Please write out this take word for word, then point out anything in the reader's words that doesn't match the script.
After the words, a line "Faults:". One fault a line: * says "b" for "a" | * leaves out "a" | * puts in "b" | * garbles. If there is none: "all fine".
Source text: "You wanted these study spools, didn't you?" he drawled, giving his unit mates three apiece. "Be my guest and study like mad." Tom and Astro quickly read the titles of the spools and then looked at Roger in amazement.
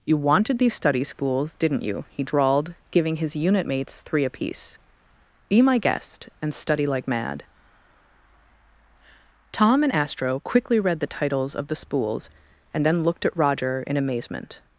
"You wanted these study spools, didn't you?" he drawled, giving his unit mates three apiece. "Be my guest and study like mad." Tom and Astro quickly read the titles of the spools and then looked at Roger in amazement.
Faults:
all fine